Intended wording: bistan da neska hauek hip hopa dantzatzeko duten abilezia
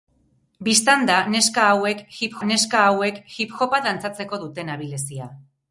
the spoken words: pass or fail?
fail